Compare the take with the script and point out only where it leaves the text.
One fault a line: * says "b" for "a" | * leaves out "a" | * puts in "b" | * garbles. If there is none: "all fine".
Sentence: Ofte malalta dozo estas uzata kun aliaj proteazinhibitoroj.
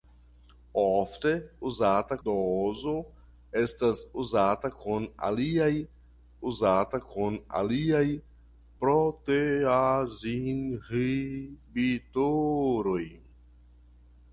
* says "uzata" for "malalta"
* puts in "uzata kun aliaj"